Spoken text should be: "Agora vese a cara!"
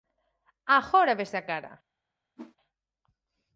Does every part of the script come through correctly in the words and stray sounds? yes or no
no